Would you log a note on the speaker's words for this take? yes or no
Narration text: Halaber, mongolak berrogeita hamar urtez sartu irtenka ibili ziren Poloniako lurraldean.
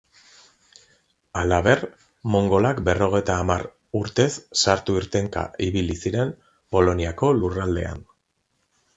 no